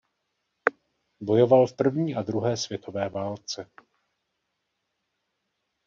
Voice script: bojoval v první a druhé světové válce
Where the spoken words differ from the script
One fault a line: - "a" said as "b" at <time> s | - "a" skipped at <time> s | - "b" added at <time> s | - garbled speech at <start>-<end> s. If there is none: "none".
none